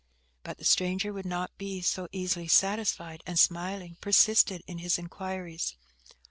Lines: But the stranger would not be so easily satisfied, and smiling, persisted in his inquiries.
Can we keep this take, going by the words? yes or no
yes